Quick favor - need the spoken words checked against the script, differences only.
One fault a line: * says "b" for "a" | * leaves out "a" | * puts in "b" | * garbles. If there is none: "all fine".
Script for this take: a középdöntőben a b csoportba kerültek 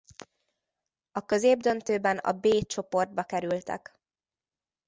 all fine